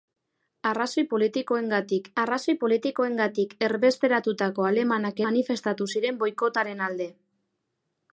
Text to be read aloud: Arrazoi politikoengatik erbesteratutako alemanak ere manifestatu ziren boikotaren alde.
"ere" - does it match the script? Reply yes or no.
no